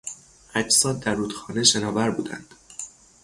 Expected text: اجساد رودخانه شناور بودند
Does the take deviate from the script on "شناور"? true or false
false